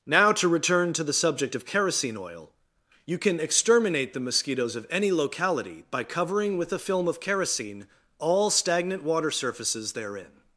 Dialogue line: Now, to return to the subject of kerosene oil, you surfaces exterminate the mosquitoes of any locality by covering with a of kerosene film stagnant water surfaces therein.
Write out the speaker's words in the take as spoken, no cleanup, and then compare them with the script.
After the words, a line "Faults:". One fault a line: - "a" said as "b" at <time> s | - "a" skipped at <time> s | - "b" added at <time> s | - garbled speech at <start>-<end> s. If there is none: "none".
Now, to return to the subject of kerosene oil, you can exterminate the mosquitoes of any locality by covering with a film of kerosene all stagnant water surfaces therein.
Faults:
- "surfaces" said as "can" at 3.2 s
- "film" added at 6.8 s
- "film" said as "all" at 8.2 s